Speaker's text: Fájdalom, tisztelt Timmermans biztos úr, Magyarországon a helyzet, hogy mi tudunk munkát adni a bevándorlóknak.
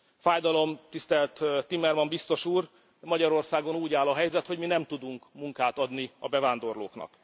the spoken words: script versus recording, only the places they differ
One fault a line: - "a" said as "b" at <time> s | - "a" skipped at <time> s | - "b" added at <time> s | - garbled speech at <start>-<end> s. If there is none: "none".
- "úgy áll" added at 3.8 s
- "nem" added at 4.7 s